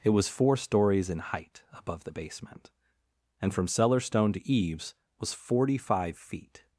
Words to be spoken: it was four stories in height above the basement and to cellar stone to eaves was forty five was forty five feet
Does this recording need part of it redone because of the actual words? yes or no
yes